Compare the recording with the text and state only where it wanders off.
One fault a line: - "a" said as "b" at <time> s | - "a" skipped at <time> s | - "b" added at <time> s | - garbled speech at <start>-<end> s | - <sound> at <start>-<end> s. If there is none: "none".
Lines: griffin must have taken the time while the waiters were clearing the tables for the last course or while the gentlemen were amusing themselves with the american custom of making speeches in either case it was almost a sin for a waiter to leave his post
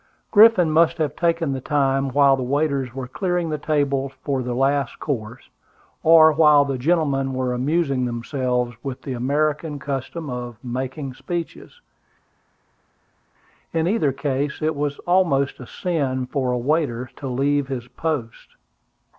none